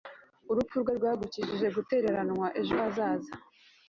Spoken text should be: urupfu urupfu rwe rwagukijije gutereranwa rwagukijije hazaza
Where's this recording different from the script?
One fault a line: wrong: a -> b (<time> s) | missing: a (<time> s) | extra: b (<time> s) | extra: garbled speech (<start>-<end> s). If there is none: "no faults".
missing: urupfu (0.8 s)
wrong: rwagukijije -> ejo (2.6 s)